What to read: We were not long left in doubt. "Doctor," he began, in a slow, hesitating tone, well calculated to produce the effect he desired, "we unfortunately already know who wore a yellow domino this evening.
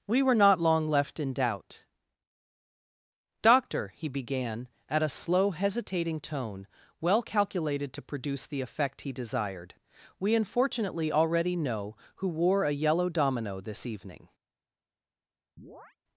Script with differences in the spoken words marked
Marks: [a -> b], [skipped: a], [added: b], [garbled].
We were not long left in doubt. "Doctor," he began, [in -> at] a slow, hesitating tone, well calculated to produce the effect he desired, "we unfortunately already know who wore a yellow domino this evening.